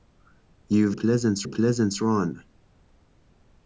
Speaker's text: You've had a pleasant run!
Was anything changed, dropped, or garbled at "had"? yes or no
yes